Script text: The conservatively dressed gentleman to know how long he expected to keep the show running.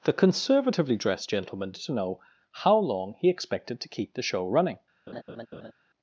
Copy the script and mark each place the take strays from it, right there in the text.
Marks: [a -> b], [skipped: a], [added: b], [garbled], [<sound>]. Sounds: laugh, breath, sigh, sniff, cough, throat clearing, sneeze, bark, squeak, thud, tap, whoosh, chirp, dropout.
The conservatively dressed gentleman to know how long he expected to keep the show running. [laugh]